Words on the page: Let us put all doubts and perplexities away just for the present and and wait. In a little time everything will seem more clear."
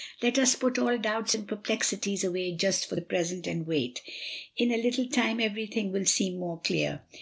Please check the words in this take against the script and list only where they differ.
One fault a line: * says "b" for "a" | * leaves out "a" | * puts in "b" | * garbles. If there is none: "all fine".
* leaves out "and"